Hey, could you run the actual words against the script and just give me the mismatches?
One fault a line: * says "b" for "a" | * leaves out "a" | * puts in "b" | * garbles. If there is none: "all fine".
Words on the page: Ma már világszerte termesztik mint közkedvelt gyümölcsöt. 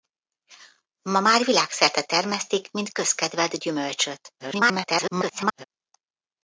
* garbles